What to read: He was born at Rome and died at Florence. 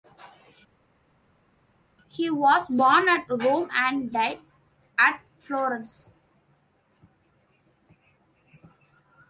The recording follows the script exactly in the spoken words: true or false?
true